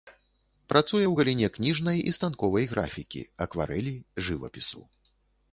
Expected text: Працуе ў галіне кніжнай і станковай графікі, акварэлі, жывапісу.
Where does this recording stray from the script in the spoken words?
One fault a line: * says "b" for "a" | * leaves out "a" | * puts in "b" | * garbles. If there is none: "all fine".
all fine